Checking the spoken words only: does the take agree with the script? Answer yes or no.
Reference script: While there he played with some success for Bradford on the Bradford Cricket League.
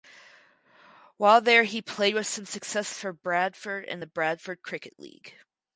no